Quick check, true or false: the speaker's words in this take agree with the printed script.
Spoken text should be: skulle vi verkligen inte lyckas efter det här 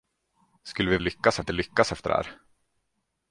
false